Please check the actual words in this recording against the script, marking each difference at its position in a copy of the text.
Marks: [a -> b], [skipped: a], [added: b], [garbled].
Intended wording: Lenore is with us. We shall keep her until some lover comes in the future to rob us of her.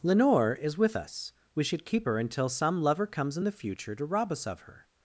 Lenore is with us. We [shall -> should] keep her until some lover comes in the future to rob us of her.